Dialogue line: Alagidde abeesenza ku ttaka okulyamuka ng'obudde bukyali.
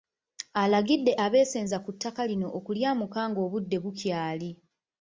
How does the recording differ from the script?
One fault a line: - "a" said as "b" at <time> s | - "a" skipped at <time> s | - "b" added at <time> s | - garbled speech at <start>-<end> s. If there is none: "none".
- "lino" added at 2.3 s